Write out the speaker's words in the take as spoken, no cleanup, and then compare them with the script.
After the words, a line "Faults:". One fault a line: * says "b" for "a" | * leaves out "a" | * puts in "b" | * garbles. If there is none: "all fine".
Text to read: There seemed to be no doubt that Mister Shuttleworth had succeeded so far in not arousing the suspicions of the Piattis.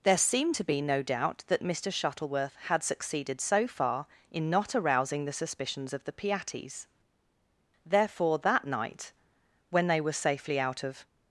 There seemed to be no doubt that Mister Shuttleworth had succeeded so far in not arousing the suspicions of the Piattis. Therefore, that night, when they were safely out of
Faults:
* puts in "Therefore that night when they were safely out of"